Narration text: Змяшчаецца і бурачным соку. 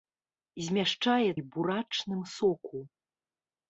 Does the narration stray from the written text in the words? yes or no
no